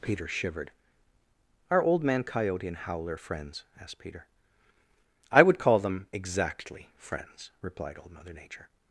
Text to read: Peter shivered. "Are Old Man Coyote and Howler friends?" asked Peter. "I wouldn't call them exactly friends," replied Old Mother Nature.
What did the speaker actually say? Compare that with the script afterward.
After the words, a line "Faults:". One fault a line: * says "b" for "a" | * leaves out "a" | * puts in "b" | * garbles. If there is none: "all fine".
Peter shivered. "Are Old Man Coyote and Howler friends?" asked Peter. "I would call them exactly friends," replied Old Mother Nature.
Faults:
* says "would" for "wouldn't"